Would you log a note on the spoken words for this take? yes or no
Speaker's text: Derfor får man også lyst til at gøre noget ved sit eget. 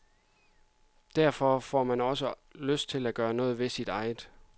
no